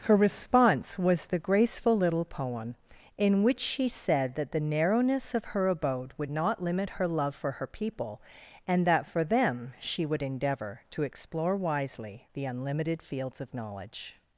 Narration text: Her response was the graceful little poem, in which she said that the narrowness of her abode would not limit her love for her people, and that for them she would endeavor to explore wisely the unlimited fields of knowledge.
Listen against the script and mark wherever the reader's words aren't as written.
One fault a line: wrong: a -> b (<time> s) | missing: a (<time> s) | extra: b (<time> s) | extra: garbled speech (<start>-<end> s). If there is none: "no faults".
no faults